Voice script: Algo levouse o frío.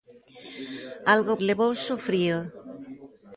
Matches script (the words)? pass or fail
pass